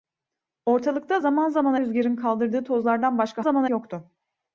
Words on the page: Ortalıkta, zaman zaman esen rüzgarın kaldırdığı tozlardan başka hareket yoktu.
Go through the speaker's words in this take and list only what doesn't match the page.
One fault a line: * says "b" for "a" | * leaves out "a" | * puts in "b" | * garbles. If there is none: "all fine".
* leaves out "esen"
* says "zaman" for "hareket"